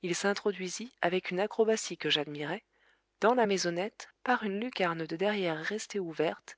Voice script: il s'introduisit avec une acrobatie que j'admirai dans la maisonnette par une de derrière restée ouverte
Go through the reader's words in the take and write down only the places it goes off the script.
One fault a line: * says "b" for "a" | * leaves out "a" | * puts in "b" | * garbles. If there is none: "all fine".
* puts in "lucarne"